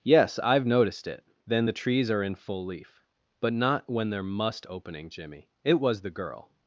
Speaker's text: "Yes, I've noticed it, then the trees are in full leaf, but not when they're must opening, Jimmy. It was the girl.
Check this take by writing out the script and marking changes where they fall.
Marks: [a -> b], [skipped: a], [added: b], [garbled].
"Yes, I've noticed it, then the trees are in full leaf, but not when they're must opening, Jimmy. It was the girl.